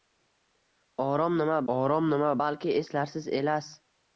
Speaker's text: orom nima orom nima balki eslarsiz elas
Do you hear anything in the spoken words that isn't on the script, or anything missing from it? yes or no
no